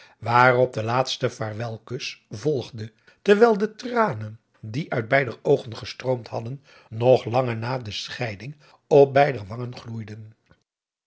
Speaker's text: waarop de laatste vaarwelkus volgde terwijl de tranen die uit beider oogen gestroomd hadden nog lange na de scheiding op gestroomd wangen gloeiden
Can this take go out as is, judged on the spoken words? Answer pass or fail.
fail